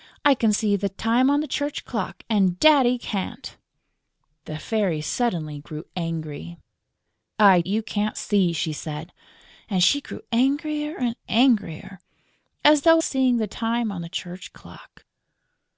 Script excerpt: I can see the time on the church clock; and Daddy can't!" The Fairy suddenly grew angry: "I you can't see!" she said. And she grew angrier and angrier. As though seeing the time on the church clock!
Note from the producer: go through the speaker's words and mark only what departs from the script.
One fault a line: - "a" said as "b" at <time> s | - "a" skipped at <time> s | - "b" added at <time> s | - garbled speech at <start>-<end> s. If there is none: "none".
none